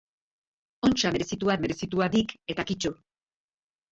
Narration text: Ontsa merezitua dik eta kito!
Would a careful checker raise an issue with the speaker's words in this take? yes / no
yes